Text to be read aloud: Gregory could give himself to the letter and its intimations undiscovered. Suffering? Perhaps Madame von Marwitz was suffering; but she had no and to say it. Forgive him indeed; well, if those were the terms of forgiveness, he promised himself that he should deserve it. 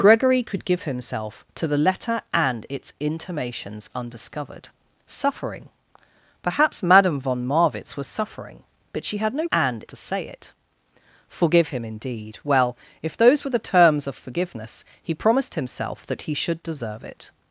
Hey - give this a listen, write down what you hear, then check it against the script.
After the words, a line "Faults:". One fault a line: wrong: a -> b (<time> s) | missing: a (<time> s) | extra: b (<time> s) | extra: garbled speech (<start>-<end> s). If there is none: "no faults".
Gregory could give himself to the letter and its intimations undiscovered. Suffering? Perhaps Madame von Marwitz was suffering; but she had no and to say it. Forgive him indeed; well, if those were the terms of forgiveness, he promised himself that he should deserve it.
Faults:
no faults